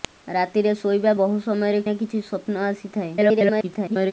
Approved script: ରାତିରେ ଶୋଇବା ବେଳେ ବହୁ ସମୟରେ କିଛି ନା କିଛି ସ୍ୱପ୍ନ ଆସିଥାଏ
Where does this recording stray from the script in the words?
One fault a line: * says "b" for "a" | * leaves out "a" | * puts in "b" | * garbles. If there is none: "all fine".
* leaves out "ବେଳେ"
* leaves out "କିଛି"
* garbles